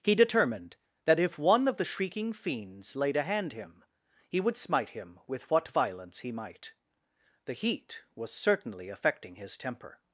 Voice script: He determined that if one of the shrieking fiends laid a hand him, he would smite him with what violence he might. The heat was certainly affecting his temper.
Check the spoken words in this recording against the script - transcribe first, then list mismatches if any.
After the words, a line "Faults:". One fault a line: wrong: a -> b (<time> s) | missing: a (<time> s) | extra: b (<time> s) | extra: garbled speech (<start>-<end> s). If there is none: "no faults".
He determined that if one of the shrieking fiends laid a hand him, he would smite him with what violence he might. The heat was certainly affecting his temper.
Faults:
no faults